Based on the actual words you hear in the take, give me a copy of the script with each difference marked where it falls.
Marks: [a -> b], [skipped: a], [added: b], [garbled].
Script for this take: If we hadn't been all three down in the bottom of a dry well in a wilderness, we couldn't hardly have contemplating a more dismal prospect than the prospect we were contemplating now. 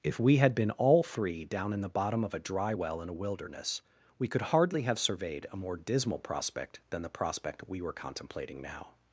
If we [hadn't -> had] been all three down in the bottom of a dry well in a wilderness, we [couldn't -> could] hardly have [contemplating -> surveyed] a more dismal prospect than the prospect we were contemplating now.